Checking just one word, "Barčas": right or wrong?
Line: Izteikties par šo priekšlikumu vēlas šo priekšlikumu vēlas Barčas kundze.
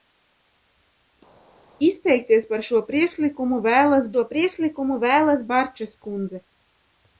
right